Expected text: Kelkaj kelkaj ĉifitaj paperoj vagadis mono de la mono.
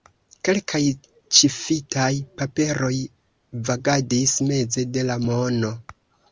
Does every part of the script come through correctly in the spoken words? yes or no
no